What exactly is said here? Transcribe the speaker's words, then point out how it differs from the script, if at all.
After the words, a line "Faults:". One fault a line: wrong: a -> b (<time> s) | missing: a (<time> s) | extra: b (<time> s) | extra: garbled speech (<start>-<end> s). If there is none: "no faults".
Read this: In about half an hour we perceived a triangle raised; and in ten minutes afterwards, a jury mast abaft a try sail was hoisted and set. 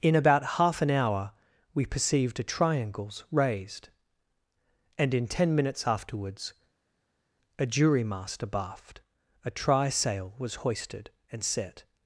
In about half an hour we perceived a triangles raised; and in ten minutes afterwards, a jury mast abaft a try sail was hoisted and set.
Faults:
wrong: triangle -> triangles (2.4 s)